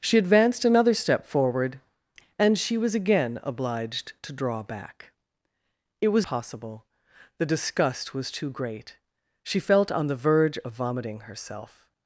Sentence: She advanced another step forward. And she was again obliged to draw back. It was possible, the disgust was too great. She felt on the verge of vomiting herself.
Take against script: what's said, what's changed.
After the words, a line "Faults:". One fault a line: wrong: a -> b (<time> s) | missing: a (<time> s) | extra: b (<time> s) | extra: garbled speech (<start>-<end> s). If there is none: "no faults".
She advanced another step forward. And she was again obliged to draw back. It was possible, the disgust was too great. She felt on the verge of vomiting herself.
Faults:
no faults